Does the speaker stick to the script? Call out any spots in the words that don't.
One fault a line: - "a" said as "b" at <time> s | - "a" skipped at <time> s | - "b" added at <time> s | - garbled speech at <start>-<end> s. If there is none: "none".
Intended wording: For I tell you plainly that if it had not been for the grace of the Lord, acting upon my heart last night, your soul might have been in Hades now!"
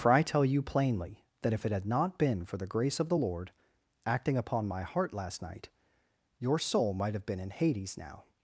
none